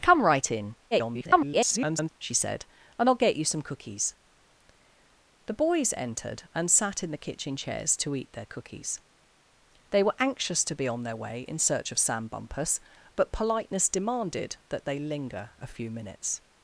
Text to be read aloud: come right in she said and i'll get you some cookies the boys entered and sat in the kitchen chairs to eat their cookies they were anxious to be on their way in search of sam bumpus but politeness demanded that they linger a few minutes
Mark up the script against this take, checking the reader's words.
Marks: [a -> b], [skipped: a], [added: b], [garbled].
come right in [garbled] she said and i'll get you some cookies the boys entered and sat in the kitchen chairs to eat their cookies they were anxious to be on their way in search of sam bumpus but politeness demanded that they linger a few minutes